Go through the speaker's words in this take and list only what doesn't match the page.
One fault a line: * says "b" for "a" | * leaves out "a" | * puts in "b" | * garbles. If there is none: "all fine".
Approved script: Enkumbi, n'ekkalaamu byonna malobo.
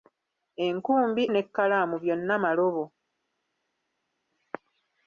all fine